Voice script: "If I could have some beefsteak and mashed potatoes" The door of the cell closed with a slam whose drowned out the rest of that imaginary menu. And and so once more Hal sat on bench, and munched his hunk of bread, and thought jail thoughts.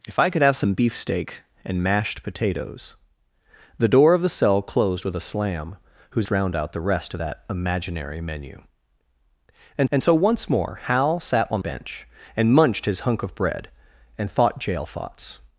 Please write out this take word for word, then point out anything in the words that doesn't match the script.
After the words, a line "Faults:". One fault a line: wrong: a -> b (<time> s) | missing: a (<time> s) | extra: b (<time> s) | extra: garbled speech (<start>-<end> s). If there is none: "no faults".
"If I could have some beefsteak and mashed potatoes" The door of the cell closed with a slam whose drowned out the rest of that imaginary menu. And and so once more Hal sat on bench, and munched his hunk of bread, and thought jail thoughts.
Faults:
no faults